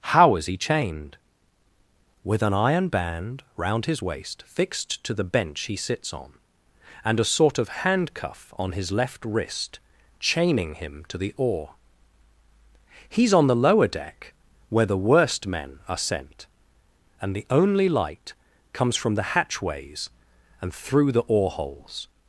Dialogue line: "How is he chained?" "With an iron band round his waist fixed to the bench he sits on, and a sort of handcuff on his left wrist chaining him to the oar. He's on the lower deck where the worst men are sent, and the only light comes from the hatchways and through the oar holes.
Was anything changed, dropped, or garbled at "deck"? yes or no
no